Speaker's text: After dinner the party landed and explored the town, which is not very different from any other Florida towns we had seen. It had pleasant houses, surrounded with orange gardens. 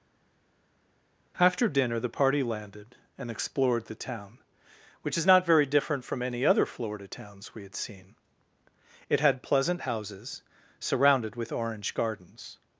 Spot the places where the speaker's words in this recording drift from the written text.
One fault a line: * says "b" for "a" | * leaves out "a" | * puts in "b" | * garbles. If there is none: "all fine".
all fine